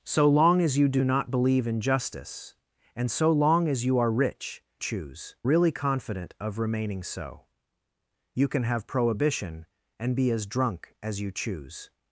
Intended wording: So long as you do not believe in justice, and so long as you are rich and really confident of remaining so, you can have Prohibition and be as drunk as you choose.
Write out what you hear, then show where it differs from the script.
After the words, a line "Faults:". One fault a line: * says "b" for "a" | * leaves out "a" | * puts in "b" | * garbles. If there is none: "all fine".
So long as you do not believe in justice, and so long as you are rich choose really confident of remaining so, you can have Prohibition and be as drunk as you choose.
Faults:
* says "choose" for "and"